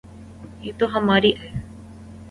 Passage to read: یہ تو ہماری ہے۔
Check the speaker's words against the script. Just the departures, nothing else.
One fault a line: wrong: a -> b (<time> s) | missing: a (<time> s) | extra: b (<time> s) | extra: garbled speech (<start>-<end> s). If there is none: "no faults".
no faults